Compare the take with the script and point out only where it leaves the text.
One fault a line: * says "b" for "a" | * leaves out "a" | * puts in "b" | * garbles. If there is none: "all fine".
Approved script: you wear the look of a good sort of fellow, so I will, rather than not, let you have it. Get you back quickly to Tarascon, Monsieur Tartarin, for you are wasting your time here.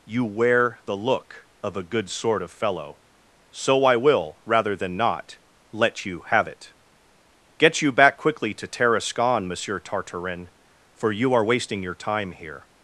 all fine